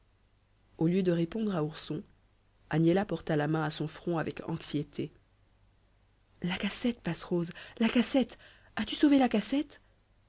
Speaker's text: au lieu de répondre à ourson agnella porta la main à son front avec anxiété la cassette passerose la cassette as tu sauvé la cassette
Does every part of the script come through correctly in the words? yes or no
yes